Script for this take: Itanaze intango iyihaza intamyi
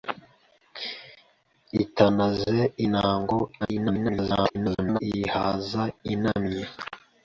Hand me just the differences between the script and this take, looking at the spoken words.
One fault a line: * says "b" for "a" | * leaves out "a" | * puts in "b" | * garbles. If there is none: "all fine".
* garbles